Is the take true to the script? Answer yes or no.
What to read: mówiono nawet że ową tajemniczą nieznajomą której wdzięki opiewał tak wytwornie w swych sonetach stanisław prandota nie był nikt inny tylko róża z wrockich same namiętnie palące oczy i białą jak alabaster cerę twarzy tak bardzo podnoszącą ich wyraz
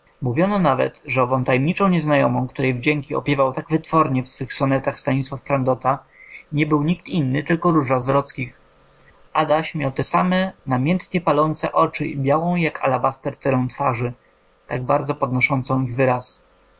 no